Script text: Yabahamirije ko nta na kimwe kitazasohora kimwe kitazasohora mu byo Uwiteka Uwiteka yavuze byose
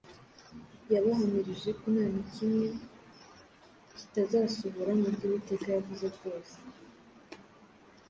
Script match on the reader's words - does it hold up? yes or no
no